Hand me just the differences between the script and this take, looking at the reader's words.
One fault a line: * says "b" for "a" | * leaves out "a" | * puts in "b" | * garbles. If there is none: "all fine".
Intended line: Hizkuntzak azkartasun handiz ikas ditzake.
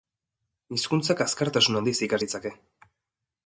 all fine